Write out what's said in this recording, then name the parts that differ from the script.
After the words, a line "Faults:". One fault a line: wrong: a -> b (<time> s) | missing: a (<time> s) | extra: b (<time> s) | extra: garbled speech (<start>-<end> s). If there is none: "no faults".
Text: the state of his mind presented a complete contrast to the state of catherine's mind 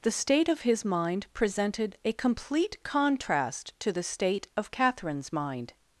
the state of his mind presented a complete contrast to the state of catherine's mind
Faults:
no faults